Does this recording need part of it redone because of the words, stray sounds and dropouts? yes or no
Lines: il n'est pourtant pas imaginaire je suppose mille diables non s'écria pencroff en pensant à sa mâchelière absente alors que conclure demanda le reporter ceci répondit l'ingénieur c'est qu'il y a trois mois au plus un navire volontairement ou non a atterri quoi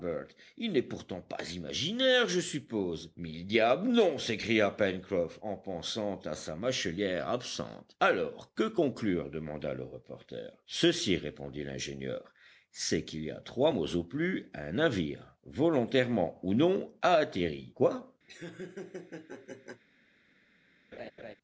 yes